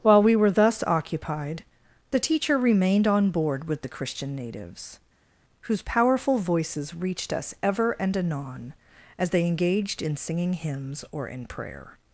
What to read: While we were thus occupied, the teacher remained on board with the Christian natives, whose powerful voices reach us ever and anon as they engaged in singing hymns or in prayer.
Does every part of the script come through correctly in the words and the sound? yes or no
no